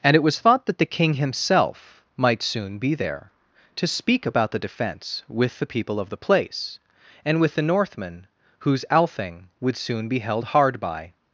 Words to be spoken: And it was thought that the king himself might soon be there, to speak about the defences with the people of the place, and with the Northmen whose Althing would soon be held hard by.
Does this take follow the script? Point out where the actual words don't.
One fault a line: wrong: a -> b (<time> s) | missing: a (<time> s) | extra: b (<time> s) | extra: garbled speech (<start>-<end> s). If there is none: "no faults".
wrong: defences -> defence (4.6 s)